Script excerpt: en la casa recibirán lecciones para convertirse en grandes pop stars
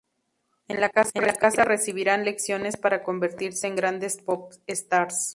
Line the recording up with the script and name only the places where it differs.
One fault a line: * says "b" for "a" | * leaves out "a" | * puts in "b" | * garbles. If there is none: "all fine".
all fine